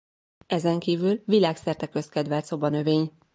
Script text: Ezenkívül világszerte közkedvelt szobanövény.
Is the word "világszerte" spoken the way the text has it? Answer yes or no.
yes